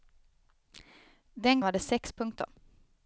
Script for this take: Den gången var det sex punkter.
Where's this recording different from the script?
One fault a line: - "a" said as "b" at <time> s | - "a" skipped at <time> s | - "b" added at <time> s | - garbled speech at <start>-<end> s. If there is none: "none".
- "gången" skipped at 1.6 s